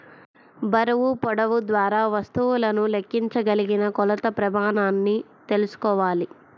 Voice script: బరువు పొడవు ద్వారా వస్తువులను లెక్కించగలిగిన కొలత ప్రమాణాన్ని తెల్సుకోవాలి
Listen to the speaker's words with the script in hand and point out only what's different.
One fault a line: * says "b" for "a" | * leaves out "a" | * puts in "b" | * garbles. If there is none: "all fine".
all fine